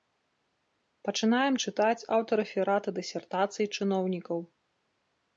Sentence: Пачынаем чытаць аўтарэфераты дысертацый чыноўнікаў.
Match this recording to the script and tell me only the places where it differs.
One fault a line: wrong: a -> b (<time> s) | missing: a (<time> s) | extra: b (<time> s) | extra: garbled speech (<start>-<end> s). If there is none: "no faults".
no faults